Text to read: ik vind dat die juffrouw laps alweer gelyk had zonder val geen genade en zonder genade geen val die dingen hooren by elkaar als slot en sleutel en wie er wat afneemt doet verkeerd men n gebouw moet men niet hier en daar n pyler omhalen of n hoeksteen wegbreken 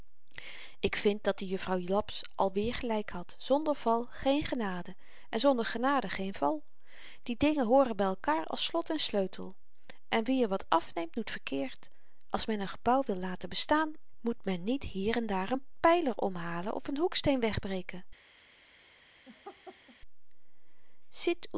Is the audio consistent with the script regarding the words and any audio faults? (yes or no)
no